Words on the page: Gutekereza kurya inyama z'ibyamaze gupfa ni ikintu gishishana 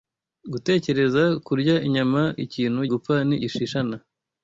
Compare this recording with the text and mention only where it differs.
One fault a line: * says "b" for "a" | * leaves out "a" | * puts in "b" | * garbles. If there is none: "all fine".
* says "ikintu" for "z'ibyamaze"
* leaves out "ikintu"